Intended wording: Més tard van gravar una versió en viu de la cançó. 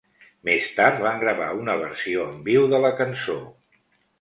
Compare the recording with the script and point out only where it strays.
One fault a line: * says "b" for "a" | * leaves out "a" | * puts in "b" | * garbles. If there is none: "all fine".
all fine